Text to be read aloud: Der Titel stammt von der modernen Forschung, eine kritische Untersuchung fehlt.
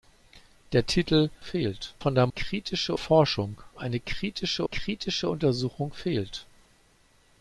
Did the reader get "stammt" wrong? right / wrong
wrong